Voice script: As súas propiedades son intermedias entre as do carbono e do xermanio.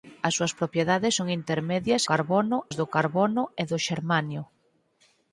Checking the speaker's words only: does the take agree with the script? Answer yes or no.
no